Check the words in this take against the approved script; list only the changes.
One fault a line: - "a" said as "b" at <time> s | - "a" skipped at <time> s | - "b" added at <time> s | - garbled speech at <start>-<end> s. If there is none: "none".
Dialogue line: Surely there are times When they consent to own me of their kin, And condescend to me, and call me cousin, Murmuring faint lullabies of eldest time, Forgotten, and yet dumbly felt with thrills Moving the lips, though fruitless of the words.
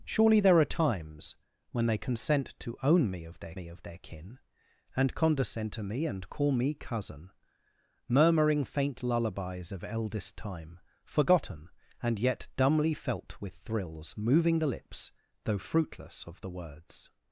- "me of their" added at 3.5 s